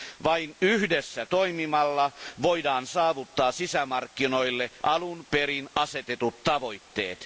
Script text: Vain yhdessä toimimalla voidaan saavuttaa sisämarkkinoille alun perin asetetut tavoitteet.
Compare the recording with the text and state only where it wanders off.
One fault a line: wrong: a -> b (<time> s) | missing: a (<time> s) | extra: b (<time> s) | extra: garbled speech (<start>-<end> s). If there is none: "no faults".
no faults